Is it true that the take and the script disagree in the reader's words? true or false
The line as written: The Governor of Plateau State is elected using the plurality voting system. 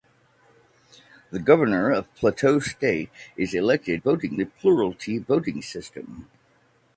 true